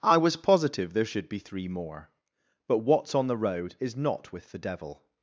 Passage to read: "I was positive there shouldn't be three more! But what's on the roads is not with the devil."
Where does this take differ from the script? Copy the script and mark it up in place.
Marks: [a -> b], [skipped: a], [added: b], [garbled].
"I was positive there [shouldn't -> should] be three more! But what's on the [roads -> road] is not with the devil."